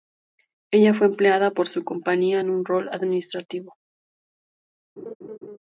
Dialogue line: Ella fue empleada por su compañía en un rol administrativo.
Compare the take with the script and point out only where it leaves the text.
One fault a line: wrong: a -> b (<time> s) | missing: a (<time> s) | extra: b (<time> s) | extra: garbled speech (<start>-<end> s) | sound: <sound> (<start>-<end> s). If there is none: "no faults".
sound: laugh (5.0-5.6 s)